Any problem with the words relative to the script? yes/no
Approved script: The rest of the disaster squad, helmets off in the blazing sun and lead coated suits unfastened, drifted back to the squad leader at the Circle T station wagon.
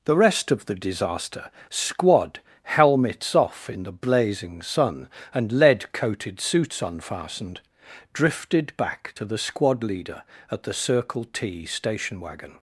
no